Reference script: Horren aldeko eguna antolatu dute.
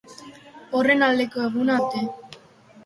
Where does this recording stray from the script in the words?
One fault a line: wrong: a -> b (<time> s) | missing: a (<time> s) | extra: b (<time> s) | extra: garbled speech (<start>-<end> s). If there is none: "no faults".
missing: antolatu (1.8 s)